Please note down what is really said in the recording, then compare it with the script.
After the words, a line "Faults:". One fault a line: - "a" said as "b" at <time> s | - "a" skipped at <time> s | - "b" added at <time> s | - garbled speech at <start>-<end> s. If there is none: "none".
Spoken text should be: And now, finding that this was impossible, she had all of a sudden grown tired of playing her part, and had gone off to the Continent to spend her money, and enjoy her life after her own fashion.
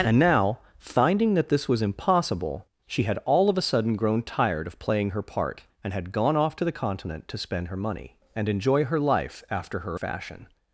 And now, finding that this was impossible, she had all of a sudden grown tired of playing her part, and had gone off to the Continent to spend her money, and enjoy her life after her fashion.
Faults:
- "own" skipped at 10.0 s